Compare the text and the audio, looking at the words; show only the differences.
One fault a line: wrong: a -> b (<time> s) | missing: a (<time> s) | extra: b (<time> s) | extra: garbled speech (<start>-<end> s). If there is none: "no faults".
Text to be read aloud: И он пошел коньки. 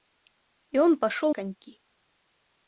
no faults